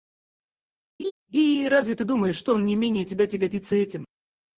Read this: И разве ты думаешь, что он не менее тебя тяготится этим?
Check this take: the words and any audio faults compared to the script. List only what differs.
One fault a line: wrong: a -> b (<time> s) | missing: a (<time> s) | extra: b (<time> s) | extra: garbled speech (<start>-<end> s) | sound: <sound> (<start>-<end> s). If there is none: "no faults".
sound: laugh (1.0-1.1 s)